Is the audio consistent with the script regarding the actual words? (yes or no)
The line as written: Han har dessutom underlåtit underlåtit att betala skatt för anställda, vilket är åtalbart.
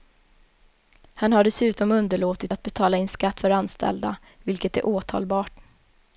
no